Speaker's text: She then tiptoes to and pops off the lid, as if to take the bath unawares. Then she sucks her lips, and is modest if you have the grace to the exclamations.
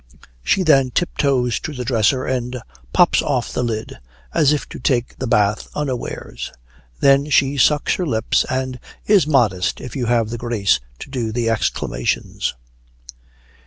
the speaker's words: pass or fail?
fail